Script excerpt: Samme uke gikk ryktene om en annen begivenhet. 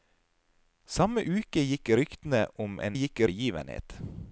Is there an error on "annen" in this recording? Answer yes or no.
yes